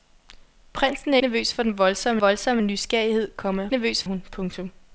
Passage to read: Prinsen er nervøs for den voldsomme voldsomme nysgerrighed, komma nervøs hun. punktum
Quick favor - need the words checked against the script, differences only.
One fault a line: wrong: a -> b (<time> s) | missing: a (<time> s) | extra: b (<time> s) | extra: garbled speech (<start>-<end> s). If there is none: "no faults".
no faults